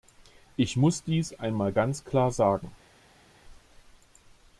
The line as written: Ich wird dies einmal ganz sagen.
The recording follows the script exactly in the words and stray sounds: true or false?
false